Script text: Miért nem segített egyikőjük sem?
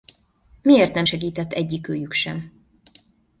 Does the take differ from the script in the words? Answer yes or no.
no